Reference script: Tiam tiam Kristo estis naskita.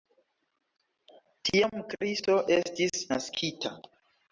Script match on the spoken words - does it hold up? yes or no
no